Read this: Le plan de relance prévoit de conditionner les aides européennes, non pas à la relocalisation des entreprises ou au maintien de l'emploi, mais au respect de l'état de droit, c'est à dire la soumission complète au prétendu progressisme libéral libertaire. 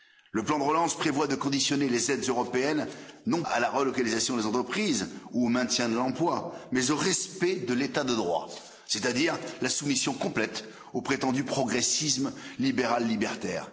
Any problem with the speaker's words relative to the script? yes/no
yes